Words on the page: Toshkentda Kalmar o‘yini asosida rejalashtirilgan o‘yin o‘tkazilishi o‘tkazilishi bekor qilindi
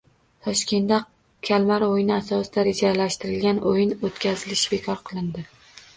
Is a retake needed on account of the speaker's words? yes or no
yes